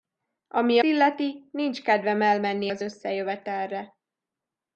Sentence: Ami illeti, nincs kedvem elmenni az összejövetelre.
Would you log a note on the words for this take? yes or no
no